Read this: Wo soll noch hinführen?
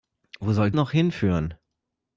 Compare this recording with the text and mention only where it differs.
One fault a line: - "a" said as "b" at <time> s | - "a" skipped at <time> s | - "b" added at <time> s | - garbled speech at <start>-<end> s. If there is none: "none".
none